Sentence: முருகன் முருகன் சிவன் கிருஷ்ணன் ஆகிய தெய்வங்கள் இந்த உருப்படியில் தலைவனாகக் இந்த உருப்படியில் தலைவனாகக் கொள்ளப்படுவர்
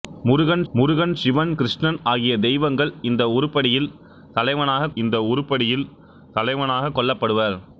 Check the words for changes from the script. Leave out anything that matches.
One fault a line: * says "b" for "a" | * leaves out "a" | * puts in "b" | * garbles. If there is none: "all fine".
all fine